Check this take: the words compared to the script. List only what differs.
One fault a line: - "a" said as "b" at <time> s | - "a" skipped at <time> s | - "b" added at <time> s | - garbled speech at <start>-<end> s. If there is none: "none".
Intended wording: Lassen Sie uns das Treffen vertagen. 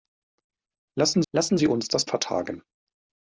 - "lassen" added at 1.3 s
- "Treffen" skipped at 2.1 s